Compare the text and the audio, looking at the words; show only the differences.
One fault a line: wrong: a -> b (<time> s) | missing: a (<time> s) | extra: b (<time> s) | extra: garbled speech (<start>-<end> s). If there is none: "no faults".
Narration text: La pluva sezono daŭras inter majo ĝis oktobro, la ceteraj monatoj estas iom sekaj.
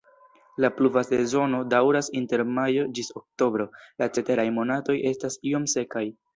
no faults